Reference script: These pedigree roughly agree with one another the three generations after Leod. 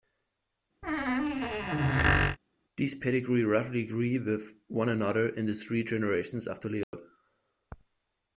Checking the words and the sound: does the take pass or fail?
fail